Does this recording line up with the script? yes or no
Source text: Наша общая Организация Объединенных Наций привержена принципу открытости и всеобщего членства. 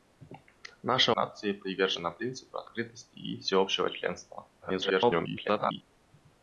no